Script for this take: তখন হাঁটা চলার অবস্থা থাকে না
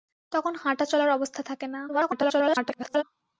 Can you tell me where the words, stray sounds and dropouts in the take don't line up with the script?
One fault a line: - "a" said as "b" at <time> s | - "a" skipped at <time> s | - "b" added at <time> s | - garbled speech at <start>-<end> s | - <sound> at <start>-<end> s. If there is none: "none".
- garbled speech at 1.9-3.0 s